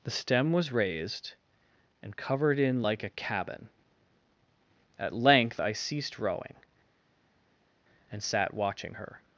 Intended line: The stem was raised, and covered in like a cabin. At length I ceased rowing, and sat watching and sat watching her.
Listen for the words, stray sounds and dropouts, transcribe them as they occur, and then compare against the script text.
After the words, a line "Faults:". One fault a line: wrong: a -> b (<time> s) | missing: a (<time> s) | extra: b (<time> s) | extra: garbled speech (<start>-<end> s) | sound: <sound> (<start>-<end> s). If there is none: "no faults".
The stem was raised, and covered in like a cabin. At length I ceased rowing, and sat watching her.
Faults:
missing: and sat watching (8.9 s)